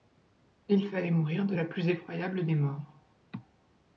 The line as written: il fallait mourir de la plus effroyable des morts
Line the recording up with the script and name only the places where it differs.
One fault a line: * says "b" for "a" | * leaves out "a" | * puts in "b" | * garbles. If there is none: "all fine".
all fine